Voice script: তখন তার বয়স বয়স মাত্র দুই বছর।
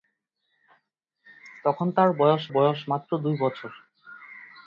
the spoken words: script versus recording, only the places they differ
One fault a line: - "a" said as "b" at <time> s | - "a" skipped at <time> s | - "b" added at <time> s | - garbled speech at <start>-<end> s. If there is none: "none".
none